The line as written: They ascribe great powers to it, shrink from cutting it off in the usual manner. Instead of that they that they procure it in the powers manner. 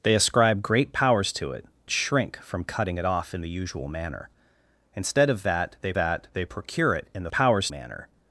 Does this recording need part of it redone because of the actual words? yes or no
no